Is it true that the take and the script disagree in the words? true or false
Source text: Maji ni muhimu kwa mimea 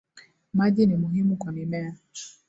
false